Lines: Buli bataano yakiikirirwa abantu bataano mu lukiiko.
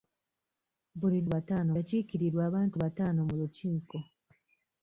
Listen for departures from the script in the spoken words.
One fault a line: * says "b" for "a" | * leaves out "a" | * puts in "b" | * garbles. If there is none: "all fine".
all fine